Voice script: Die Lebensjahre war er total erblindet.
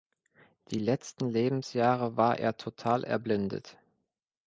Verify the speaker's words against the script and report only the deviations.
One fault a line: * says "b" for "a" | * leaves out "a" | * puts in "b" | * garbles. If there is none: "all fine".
* puts in "letzten"